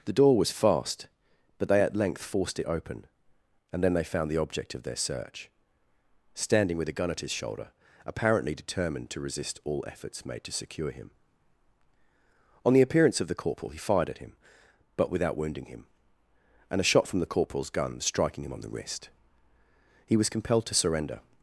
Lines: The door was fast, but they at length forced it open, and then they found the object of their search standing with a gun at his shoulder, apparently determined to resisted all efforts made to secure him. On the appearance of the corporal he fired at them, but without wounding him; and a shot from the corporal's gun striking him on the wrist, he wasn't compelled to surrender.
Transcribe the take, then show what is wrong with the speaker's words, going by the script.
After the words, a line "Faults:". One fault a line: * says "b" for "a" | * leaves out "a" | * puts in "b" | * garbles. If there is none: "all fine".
The door was fast, but they at length forced it open, and then they found the object of their search standing with a gun at his shoulder, apparently determined to resist all efforts made to secure him. On the appearance of the corporal he fired at him, but without wounding him; and a shot from the corporal's gun striking him on the wrist, he was compelled to surrender.
Faults:
* says "resist" for "resisted"
* says "him" for "them"
* says "was" for "wasn't"